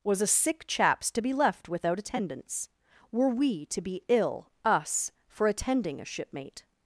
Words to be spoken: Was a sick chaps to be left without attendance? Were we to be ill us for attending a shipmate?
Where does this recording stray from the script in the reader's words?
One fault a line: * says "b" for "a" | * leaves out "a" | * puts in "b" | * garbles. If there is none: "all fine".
all fine